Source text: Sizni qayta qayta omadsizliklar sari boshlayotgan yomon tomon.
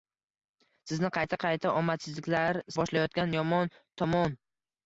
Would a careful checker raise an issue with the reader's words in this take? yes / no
yes